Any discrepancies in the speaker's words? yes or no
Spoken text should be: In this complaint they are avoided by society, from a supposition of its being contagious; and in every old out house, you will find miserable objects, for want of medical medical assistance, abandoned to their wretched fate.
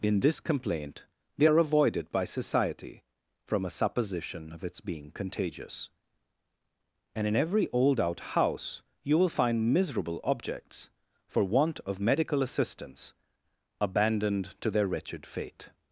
yes